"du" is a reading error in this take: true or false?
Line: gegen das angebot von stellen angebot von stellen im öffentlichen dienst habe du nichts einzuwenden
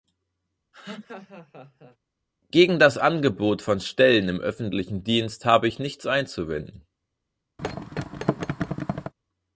true